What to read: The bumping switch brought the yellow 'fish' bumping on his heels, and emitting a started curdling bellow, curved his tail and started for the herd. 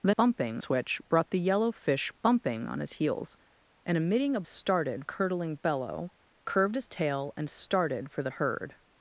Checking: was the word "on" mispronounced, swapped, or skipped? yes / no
no